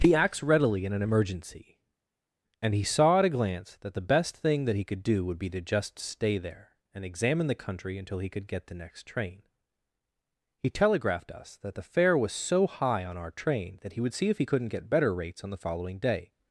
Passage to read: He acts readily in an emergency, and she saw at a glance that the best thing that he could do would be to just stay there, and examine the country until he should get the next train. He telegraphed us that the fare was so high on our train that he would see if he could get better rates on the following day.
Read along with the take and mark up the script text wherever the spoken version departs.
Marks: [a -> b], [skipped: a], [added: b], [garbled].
He acts readily in an emergency, and [she -> he] saw at a glance that the best thing that he could do would be to just stay there, and examine the country until he [should -> could] get the next train. He telegraphed us that the fare was so high on our train that he would see if he [could -> couldn't] get better rates on the following day.